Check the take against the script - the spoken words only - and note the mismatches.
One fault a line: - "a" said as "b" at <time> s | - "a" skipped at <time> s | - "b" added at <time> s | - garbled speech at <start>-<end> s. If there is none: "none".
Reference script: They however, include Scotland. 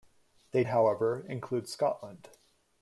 none